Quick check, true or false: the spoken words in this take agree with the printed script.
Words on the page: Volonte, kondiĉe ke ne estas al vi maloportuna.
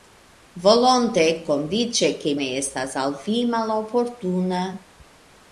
true